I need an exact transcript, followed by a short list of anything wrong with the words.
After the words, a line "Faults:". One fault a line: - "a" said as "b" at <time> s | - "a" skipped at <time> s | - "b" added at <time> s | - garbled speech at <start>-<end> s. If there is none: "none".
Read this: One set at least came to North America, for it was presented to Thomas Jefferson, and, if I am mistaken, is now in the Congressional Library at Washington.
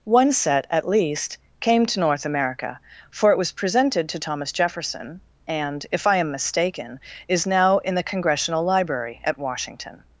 One set at least came to North America, for it was presented to Thomas Jefferson, and, if I am mistaken, is now in the Congressional Library at Washington.
Faults:
none